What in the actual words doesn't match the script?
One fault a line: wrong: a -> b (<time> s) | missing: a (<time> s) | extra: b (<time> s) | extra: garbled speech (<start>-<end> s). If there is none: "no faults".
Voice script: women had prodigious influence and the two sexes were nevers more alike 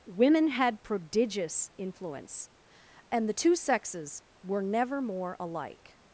wrong: nevers -> never (4.6 s)